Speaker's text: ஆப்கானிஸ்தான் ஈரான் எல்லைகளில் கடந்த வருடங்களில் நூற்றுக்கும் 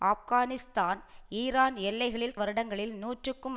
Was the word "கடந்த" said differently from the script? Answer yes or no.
yes